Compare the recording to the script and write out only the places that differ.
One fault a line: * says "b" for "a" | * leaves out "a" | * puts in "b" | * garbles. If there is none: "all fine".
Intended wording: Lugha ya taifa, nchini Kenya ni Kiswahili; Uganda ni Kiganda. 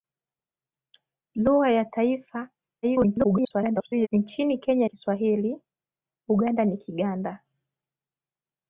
* garbles
* leaves out "ni"